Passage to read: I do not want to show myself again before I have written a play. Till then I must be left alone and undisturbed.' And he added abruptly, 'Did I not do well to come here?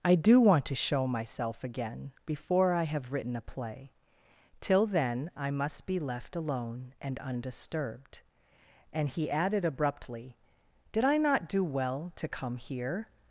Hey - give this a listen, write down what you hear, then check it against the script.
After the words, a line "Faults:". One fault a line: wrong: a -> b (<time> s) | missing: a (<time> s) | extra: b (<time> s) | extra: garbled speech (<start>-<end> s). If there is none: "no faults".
I do want to show myself again before I have written a play. Till then I must be left alone and undisturbed.' And he added abruptly, 'Did I not do well to come here?
Faults:
missing: not (0.4 s)